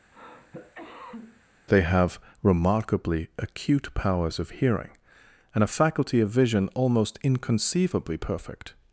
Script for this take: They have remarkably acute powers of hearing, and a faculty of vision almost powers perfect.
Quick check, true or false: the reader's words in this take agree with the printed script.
false